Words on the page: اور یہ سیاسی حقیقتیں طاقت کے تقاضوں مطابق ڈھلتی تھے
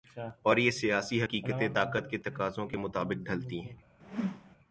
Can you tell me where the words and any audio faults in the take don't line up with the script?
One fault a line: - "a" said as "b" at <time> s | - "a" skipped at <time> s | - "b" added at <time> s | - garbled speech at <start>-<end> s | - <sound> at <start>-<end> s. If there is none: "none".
- "کے" added at 2.7 s
- "تھے" said as "ہیں" at 3.6 s
- whoosh at 4.0-4.6 s